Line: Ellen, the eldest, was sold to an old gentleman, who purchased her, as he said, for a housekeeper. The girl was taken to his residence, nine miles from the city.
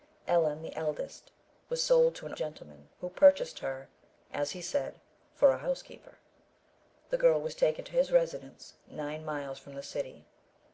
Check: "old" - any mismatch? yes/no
yes